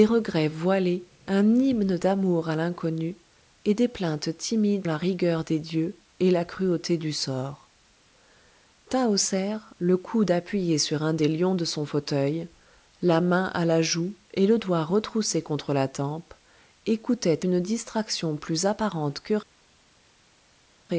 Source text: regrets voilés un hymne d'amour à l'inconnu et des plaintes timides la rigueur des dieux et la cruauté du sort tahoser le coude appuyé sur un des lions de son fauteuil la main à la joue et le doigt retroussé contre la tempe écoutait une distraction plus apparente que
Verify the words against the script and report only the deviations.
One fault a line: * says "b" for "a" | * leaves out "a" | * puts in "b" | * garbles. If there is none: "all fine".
all fine